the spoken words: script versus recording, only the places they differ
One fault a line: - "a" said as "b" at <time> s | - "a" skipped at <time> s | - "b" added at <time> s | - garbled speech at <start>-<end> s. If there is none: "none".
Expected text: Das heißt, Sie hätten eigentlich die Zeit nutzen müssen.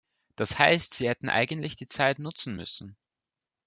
none